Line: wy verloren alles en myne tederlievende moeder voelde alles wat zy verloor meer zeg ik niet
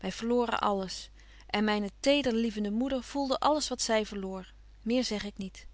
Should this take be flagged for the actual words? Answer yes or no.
no